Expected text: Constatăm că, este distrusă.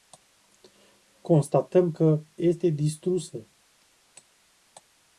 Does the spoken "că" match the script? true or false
true